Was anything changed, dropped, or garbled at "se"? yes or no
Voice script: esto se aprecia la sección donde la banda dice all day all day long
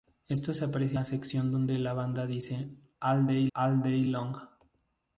no